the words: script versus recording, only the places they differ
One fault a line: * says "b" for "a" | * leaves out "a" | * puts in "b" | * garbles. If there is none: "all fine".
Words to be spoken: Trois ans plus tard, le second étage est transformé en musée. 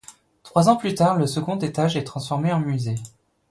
all fine